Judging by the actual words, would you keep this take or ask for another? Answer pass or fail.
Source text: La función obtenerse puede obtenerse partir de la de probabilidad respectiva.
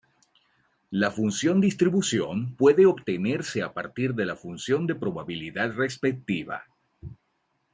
fail